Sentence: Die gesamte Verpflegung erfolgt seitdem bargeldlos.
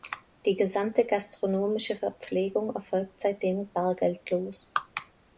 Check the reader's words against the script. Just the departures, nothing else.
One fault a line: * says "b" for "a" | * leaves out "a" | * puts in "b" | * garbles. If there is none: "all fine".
* puts in "gastronomische"